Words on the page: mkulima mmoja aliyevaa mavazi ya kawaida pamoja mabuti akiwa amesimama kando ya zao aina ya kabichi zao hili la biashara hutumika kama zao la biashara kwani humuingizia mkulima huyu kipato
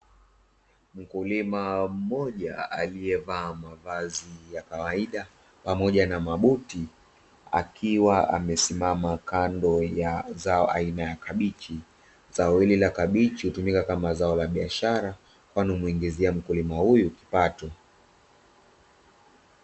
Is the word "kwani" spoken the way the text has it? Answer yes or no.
yes